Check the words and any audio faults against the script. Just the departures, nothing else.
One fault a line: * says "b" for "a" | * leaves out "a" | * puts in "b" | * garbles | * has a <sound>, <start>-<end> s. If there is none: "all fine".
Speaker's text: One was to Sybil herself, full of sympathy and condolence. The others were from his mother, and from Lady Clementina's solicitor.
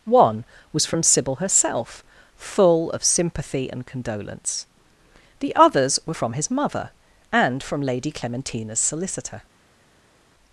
* says "from" for "to"